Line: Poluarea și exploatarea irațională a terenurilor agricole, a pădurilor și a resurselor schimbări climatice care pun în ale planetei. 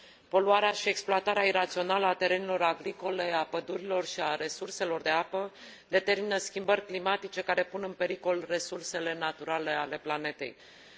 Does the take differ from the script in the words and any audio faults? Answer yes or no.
yes